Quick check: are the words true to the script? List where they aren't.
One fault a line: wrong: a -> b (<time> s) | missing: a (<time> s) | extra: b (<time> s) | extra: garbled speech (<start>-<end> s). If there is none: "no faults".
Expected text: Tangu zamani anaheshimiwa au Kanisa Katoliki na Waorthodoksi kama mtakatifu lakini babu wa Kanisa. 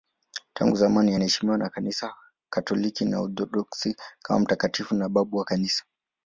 wrong: au -> na (1.6 s)
wrong: lakini -> na (4.9 s)